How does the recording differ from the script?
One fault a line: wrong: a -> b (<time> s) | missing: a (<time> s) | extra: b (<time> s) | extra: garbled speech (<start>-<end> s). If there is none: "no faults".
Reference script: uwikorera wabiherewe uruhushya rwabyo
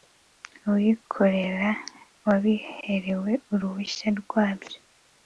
no faults